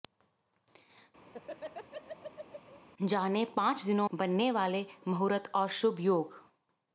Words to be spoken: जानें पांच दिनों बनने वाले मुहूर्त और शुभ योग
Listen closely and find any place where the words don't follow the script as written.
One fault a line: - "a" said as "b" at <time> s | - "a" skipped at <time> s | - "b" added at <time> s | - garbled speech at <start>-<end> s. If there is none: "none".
none